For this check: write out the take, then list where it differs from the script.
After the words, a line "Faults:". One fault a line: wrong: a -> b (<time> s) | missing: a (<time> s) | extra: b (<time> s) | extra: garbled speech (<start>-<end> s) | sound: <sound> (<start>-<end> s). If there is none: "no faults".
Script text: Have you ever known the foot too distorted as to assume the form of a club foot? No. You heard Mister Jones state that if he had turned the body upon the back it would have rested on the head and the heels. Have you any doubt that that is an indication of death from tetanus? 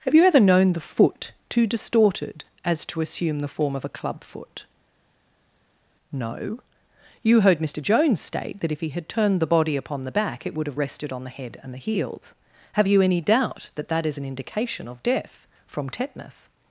Have you ever known the foot too distorted as to assume the form of a club foot? No. You heard Mister Jones state that if he had turned the body upon the back it would have rested on the head and the heels. Have you any doubt that that is an indication of death from tetanus?
Faults:
no faults